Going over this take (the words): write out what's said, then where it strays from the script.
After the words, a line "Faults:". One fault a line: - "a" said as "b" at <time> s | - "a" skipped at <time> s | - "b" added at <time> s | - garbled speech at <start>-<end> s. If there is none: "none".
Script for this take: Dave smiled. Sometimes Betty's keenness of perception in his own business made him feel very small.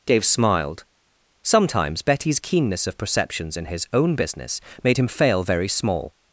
Dave smiled. Sometimes Betty's keenness of perceptions in his own business made him fail very small.
Faults:
- "perception" said as "perceptions" at 3.0 s
- "feel" said as "fail" at 5.1 s